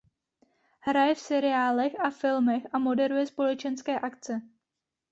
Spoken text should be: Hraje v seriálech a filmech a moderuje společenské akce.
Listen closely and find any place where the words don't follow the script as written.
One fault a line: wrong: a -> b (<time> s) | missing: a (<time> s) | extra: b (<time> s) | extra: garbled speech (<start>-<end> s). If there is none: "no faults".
no faults